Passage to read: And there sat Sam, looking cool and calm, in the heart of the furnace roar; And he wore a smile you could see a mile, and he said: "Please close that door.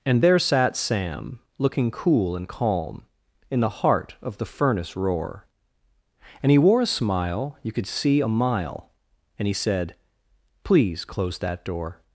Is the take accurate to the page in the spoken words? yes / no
yes